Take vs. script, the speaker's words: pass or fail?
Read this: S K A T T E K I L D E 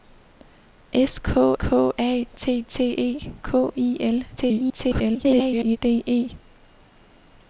fail